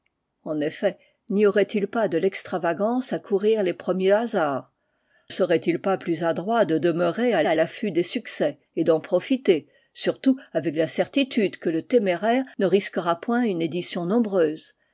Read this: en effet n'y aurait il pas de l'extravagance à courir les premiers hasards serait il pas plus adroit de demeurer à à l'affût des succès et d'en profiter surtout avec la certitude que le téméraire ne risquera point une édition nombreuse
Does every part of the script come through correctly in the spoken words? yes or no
yes